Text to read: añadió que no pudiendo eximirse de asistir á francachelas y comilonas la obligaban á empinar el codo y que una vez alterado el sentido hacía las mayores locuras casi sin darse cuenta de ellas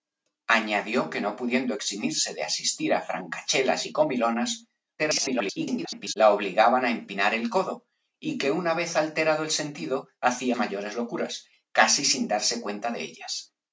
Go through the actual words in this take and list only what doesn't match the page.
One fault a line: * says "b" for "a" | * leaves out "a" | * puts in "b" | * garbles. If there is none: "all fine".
* garbles
* leaves out "las"